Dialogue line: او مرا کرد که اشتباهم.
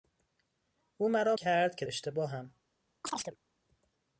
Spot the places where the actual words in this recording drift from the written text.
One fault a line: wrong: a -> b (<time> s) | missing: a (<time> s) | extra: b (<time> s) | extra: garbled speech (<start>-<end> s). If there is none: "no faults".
no faults